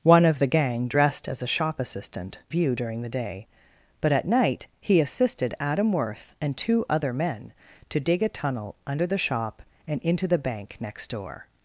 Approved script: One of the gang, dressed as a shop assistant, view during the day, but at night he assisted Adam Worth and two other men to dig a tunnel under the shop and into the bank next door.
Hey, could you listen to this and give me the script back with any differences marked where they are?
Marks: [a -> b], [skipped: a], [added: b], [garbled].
One of the gang, dressed as a shop assistant, view during the day, but at night he assisted Adam Worth and two other men to dig a tunnel under the shop and into the bank next door.